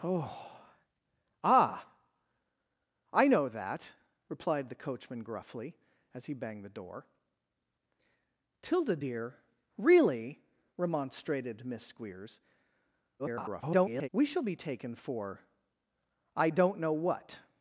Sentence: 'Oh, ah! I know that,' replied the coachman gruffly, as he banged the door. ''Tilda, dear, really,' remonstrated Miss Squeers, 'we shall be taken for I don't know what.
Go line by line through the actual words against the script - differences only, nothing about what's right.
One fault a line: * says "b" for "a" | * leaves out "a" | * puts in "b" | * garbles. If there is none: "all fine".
* garbles